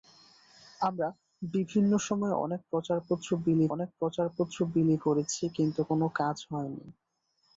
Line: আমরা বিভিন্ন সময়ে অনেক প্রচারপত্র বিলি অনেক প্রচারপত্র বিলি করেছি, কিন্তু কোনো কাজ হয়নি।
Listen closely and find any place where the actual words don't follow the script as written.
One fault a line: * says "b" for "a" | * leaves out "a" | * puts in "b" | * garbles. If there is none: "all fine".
all fine